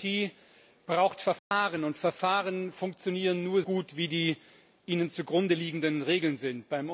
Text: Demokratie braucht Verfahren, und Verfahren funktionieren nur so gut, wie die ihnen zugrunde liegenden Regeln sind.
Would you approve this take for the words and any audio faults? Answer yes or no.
no